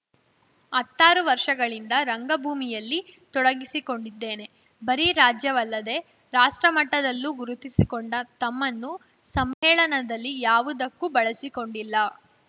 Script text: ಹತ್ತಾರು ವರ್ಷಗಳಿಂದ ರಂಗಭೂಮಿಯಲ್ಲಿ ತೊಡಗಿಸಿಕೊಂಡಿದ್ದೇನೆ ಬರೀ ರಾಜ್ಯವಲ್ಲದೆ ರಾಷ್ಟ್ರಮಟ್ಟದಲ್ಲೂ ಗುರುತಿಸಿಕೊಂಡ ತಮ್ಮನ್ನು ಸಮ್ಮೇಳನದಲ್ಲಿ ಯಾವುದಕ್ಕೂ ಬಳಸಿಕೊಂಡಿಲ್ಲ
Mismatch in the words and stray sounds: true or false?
true